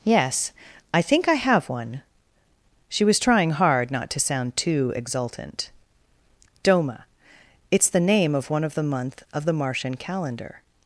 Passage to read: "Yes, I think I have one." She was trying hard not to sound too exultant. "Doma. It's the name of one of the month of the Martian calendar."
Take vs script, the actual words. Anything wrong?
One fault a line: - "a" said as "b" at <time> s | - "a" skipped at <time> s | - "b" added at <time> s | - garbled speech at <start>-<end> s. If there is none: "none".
none